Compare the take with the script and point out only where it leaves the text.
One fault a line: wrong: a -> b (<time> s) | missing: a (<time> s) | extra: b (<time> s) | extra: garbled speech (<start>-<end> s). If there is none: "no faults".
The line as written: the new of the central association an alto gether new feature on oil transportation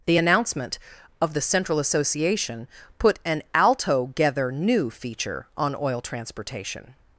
wrong: new -> announcement (0.2 s)
extra: put (3.0 s)